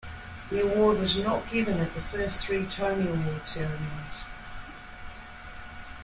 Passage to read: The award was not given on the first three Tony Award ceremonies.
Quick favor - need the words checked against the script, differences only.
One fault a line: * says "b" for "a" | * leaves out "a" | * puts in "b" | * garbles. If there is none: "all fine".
* says "at" for "on"